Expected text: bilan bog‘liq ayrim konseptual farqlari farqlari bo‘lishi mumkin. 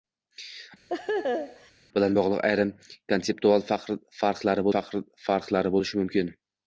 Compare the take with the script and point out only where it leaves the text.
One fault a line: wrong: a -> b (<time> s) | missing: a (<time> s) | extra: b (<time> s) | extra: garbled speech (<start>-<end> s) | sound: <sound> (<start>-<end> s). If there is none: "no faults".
sound: laugh (0.9-1.7 s)